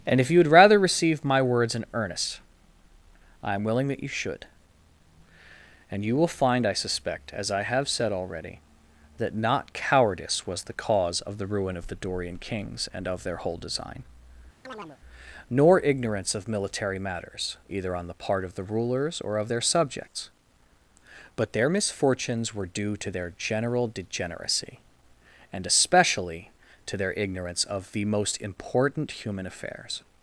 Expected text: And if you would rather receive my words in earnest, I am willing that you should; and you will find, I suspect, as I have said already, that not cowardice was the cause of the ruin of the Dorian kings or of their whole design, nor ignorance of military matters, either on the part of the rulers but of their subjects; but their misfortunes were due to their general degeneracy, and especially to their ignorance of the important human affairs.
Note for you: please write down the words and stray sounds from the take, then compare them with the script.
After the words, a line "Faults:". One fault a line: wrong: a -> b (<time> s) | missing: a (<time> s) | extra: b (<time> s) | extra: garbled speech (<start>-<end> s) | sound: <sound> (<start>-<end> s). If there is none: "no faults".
And if you would rather receive my words in earnest, I am willing that you should; and you will find, I suspect, as I have said already, that not cowardice was the cause of the ruin of the Dorian kings and of their whole design, nor ignorance of military matters, either on the part of the rulers or of their subjects; but their misfortunes were due to their general degeneracy, and especially to their ignorance of the most important human affairs.
Faults:
wrong: or -> and (12.9 s)
sound: chirp (14.6-15.0 s)
wrong: but -> or (19.2 s)
extra: most (28.0 s)